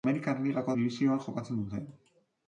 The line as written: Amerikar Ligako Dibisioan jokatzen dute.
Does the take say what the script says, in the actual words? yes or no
yes